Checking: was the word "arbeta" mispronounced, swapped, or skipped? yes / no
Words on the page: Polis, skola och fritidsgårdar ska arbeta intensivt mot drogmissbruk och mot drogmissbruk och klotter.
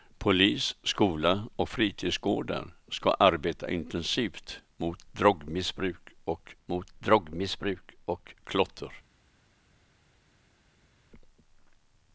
no